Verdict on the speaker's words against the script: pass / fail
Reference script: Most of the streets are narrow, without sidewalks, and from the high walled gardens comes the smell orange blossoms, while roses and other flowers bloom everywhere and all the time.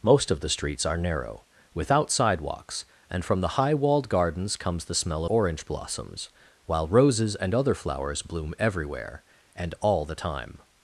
pass